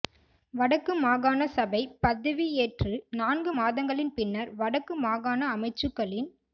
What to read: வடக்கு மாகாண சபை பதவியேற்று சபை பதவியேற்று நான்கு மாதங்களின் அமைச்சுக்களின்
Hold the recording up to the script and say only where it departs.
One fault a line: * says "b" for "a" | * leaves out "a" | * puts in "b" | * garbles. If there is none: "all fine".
* says "நான்கு மாதங்களின் பின்னர் வடக்கு மாகாண" for "சபை பதவியேற்று நான்கு மாதங்களின்"